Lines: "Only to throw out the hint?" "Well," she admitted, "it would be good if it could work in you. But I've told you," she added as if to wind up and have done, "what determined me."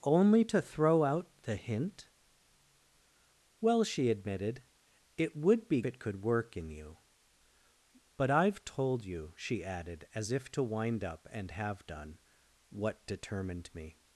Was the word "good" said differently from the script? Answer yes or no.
yes